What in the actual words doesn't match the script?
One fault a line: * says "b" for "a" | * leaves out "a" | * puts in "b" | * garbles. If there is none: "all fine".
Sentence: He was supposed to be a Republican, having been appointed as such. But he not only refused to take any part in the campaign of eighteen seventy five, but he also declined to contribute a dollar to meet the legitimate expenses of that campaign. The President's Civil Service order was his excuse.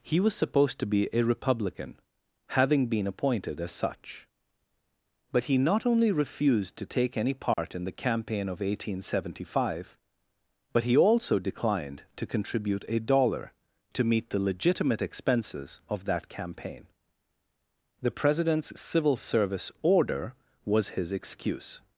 all fine